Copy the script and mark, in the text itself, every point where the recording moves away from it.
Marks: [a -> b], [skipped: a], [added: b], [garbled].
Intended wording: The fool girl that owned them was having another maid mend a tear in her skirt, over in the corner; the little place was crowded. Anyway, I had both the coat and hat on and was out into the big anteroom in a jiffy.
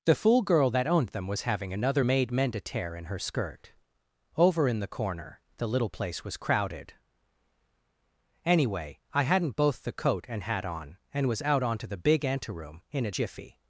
The fool girl that owned them was having another maid mend a tear in her skirt, over in the corner; the little place was crowded. Anyway, I [had -> hadn't] both the coat and hat on and was out [into -> onto] the big anteroom in a jiffy.